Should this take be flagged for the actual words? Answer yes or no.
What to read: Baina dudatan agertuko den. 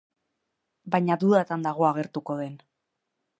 yes